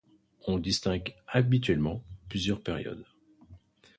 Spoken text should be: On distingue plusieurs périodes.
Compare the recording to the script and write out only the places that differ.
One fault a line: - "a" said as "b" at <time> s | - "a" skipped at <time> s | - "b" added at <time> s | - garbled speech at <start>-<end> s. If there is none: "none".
- "habituellement" added at 1.3 s